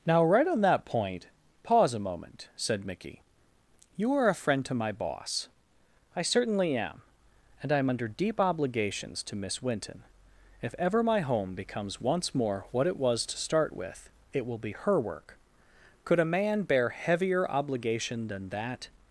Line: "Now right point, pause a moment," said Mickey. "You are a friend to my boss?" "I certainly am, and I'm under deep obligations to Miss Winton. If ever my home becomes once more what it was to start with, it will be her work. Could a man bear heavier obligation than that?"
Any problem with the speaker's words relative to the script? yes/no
yes